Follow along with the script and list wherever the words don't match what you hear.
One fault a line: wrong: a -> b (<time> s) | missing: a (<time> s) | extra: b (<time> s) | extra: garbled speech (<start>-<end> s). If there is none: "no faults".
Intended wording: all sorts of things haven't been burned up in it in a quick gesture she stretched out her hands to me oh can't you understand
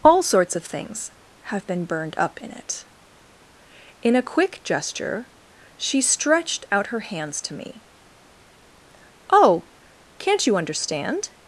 wrong: haven't -> have (1.5 s)